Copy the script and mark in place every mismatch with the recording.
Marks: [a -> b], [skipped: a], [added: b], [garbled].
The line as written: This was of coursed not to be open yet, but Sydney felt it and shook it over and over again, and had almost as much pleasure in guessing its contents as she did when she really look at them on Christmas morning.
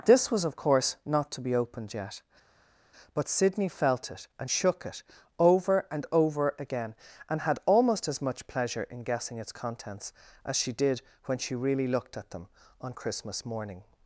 This was of [coursed -> course] not to be [open -> opened] yet, but Sydney felt it and shook it over and over again, and had almost as much pleasure in guessing its contents as she did when she really [look -> looked] at them on Christmas morning.